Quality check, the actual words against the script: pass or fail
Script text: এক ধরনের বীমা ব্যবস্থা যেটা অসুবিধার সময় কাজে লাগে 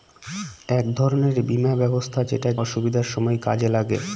pass